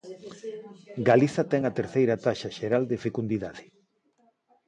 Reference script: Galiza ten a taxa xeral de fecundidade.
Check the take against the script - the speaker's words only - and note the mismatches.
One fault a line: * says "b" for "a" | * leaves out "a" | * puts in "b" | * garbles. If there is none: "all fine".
* puts in "terceira"